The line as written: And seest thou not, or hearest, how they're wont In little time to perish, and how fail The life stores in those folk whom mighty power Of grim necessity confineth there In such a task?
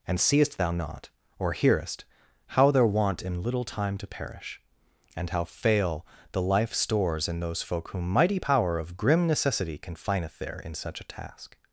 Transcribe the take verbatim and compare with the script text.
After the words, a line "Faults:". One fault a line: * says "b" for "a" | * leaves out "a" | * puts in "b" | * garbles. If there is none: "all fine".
And seest thou not, or hearest, how they're wont In little time to perish, and how fail The life stores in those folk whom mighty power Of grim necessity confineth there In such a task?
Faults:
all fine